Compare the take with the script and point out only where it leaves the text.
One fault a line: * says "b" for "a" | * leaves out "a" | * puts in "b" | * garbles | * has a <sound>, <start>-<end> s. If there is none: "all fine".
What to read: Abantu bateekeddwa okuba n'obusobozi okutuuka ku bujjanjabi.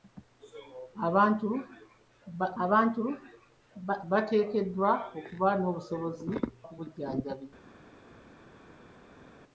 * puts in "abantu"
* leaves out "okutuuka"